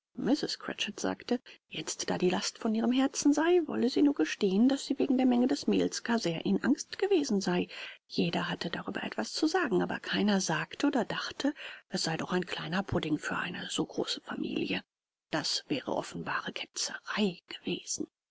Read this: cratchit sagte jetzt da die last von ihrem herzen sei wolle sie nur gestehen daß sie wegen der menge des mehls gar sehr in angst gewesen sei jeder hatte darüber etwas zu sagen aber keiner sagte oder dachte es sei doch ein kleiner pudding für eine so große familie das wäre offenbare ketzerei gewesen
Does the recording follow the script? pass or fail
pass